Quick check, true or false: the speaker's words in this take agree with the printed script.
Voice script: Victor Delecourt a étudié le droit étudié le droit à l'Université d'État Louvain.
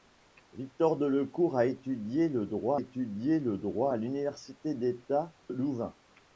true